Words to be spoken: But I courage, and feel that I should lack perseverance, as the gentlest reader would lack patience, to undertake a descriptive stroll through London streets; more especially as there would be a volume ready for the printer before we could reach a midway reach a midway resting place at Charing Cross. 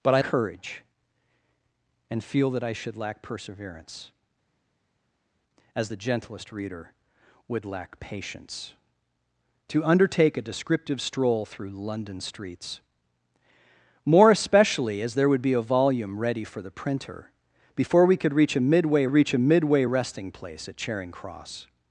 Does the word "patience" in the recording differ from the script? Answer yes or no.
no